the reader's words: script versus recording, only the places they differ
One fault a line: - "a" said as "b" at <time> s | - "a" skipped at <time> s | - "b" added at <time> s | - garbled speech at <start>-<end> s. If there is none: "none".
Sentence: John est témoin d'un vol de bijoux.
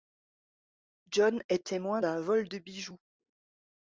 none